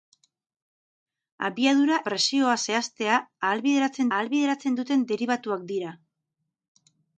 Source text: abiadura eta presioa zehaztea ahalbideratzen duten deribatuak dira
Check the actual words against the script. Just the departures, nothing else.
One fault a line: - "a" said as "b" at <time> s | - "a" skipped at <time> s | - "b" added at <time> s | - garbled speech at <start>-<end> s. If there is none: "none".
- "eta" skipped at 2.0 s
- "ahalbideratzen" added at 4.2 s